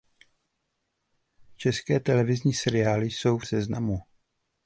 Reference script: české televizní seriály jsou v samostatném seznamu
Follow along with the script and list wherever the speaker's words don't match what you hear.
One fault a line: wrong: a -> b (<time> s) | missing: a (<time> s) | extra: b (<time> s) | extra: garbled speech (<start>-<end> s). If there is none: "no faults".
missing: samostatném (3.5 s)